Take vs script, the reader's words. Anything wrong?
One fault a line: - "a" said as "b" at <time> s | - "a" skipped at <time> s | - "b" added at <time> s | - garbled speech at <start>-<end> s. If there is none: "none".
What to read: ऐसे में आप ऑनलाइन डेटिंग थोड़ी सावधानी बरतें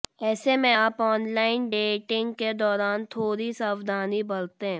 - "के दौरान" added at 2.3 s